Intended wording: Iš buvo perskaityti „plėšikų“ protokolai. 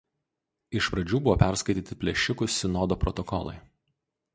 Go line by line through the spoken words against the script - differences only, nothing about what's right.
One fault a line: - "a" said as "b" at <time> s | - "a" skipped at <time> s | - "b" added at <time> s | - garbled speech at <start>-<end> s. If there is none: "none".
- "pradžių" added at 0.9 s
- "sinodo" added at 2.6 s